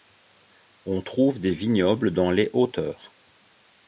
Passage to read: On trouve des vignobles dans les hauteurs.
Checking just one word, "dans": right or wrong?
right